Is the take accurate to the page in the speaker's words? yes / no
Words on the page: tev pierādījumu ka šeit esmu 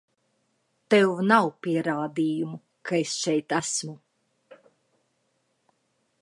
no